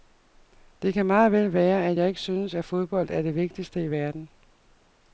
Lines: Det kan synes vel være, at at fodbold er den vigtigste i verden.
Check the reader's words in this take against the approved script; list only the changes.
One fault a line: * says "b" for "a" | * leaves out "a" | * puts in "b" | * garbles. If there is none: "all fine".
* says "meget" for "synes"
* puts in "jeg ikke synes"
* says "det" for "den"